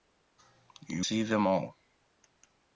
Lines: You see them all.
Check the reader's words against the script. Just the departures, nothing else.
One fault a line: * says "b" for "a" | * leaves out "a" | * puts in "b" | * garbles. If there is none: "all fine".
all fine